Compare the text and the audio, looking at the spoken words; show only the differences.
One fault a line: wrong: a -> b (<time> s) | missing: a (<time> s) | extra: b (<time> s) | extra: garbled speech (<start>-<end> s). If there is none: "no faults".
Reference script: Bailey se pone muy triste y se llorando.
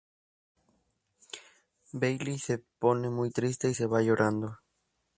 extra: va (3.9 s)